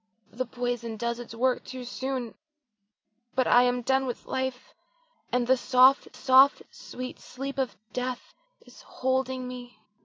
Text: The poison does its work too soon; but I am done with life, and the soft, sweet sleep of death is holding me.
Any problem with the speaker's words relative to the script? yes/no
yes